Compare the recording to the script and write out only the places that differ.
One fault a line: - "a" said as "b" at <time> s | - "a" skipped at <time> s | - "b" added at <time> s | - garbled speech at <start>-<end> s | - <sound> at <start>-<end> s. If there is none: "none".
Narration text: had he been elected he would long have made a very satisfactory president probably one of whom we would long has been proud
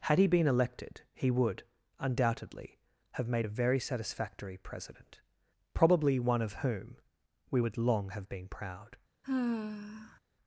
- "long" said as "undoubtedly" at 2.0 s
- "has" said as "have" at 8.1 s
- sigh at 9.2-10.2 s